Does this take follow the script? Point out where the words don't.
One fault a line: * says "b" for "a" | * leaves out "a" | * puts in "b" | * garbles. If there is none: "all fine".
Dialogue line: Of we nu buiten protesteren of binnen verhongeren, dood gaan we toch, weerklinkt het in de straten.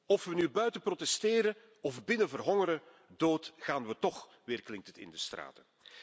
all fine